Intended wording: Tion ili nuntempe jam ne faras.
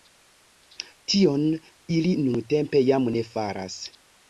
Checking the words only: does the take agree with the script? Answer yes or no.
yes